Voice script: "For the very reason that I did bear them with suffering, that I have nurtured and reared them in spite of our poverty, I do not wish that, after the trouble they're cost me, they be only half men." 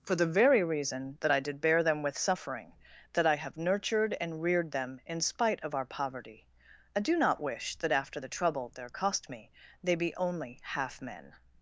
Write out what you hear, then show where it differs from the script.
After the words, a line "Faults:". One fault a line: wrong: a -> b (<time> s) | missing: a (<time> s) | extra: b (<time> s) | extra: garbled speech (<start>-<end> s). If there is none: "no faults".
"For the very reason that I did bear them with suffering, that I have nurtured and reared them in spite of our poverty, I do not wish that, after the trouble they're cost me, they be only half men."
Faults:
no faults